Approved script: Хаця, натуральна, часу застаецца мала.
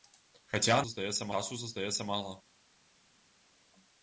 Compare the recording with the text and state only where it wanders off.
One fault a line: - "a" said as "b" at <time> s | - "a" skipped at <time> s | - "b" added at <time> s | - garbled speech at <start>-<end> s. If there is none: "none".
- "натуральна" said as "застаецца" at 0.9 s